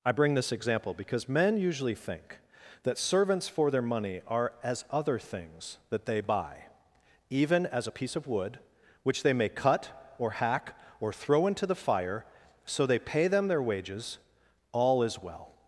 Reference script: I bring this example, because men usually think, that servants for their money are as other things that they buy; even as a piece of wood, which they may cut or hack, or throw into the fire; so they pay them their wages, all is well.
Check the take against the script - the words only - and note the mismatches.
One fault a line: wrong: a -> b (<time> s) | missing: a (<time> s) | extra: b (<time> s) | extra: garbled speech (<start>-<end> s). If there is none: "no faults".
no faults